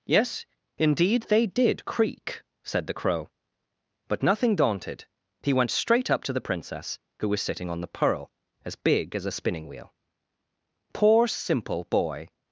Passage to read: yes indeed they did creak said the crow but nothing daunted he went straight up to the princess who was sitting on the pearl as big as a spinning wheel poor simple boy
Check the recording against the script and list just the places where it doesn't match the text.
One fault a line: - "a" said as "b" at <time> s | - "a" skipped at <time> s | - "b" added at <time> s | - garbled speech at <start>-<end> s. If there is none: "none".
none